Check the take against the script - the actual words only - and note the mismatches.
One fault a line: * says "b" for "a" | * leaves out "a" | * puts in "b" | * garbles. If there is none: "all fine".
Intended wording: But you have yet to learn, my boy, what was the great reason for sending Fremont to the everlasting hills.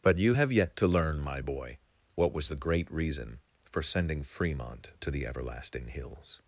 all fine